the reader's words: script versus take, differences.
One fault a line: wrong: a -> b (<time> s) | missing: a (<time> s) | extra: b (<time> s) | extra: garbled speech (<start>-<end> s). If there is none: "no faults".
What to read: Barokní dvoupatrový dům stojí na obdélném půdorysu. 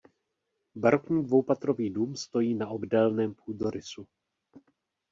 no faults